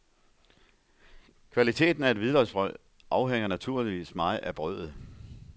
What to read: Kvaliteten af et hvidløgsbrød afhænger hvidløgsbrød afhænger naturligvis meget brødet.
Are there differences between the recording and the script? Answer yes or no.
yes